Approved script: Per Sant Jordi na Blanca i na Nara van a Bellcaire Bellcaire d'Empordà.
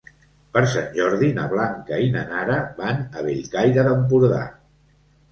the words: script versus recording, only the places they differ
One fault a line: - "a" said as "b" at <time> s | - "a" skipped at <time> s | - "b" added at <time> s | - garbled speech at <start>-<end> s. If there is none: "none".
- "Bellcaire" skipped at 3.9 s